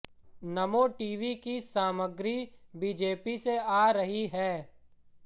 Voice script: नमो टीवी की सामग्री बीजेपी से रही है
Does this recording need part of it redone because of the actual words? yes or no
yes